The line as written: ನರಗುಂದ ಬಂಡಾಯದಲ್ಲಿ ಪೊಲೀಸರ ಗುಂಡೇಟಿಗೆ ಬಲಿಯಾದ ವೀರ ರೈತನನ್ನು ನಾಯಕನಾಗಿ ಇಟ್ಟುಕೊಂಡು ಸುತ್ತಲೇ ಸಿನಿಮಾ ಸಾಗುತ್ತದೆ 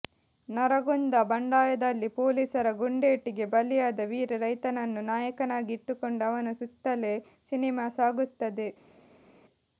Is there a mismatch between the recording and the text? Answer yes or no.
yes